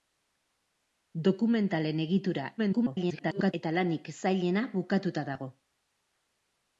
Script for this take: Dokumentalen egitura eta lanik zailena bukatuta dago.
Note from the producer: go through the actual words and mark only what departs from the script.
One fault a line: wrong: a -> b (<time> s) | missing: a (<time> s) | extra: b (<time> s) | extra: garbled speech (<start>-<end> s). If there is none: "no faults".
extra: garbled speech (2.6-3.5 s)